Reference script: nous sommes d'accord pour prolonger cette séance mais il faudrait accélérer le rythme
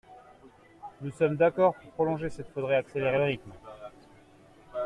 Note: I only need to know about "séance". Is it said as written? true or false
false